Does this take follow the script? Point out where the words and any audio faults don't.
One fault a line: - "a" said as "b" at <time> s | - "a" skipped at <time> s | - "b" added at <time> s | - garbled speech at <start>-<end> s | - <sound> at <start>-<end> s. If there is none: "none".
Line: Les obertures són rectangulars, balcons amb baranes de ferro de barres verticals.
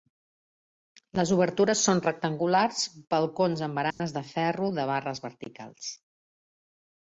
- dropout at 3.9-4.0 s